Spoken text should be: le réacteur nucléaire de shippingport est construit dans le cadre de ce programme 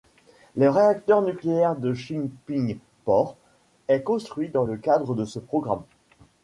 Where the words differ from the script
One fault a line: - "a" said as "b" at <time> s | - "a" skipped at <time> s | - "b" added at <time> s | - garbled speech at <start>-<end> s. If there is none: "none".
none